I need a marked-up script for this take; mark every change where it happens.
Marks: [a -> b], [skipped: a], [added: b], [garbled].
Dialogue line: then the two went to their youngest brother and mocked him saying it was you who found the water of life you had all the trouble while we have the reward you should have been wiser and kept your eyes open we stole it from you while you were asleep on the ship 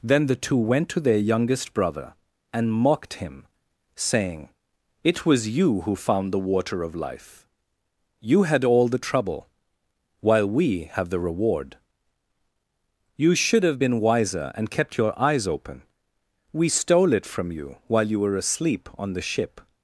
then the two went to their youngest brother and mocked him saying it was you who found the water of life you had all the trouble while we have the reward you should have been wiser and kept your eyes open we stole it from you while you were asleep on the ship